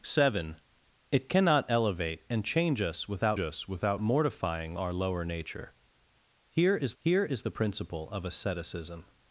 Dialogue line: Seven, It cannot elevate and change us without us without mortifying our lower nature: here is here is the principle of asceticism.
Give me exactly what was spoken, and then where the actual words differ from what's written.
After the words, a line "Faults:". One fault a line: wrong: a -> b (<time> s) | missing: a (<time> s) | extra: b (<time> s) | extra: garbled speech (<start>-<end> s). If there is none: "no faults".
Seven, It cannot elevate and change us without us without mortifying our lower nature: here is here is the principle of asceticism.
Faults:
no faults